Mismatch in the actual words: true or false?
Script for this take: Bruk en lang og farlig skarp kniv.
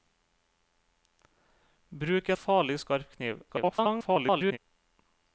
true